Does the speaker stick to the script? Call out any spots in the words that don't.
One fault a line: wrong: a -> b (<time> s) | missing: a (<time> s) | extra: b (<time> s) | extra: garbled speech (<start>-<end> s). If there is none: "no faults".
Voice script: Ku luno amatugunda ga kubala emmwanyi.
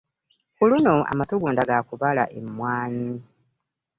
no faults